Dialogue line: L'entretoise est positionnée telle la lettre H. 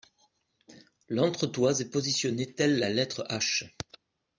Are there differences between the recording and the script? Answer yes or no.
no